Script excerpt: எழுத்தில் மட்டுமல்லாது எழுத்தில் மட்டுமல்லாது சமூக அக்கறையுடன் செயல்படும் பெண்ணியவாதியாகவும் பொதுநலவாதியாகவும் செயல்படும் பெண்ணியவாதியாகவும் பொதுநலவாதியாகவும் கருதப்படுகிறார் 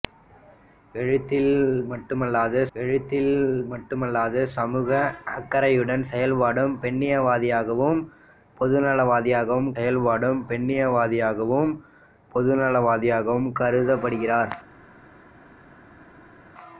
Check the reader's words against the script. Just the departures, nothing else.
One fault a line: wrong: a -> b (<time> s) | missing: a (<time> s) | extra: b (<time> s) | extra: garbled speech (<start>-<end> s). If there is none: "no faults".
no faults